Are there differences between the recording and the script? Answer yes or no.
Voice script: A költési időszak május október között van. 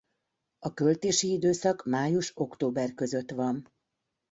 no